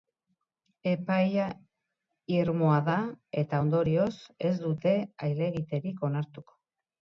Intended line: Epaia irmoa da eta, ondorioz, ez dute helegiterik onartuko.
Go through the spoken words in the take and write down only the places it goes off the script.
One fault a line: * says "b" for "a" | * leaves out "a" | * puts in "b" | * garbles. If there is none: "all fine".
all fine